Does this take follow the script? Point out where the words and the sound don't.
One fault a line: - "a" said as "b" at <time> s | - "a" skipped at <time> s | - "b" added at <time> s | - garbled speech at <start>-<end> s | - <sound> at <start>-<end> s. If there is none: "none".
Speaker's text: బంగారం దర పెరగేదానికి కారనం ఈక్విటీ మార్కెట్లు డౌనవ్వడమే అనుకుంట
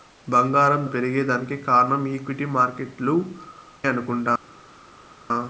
- "దర" skipped at 0.8 s
- "డౌనవ్వడమే" skipped at 3.2 s